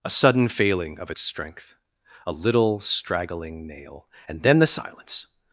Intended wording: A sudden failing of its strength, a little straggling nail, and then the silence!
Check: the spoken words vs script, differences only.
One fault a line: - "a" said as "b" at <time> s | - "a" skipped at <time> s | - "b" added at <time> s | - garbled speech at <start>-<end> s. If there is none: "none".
none